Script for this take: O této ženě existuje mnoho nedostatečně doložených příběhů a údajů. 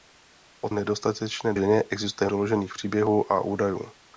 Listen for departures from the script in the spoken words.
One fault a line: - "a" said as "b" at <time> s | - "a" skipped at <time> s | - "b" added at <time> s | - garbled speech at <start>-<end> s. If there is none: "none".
- "této" said as "nedostatečně" at 0.7 s
- "mnoho nedostatečně" skipped at 2.3 s